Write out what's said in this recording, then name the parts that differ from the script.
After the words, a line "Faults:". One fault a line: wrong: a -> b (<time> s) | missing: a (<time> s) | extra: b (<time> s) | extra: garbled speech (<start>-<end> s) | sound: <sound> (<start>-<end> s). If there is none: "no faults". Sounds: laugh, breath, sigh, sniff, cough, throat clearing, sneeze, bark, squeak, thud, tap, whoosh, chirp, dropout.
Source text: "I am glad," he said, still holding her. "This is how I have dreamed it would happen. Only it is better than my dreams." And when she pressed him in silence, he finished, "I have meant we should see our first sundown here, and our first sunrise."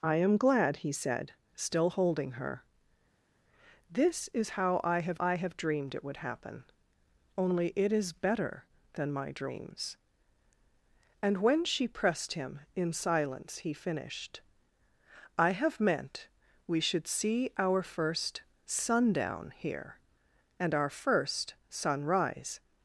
"I am glad," he said, still holding her. "This is how I have I have dreamed it would happen. Only it is better than my dreams." And when she pressed him in silence, he finished, "I have meant we should see our first sundown here, and our first sunrise."
Faults:
extra: I have (5.2 s)